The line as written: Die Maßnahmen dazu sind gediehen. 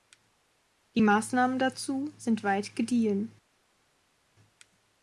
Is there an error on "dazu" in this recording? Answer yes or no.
no